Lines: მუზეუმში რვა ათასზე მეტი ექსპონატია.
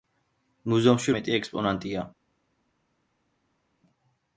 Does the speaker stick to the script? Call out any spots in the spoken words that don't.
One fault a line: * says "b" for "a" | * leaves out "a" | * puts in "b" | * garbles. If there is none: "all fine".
* leaves out "რვა ათასზე"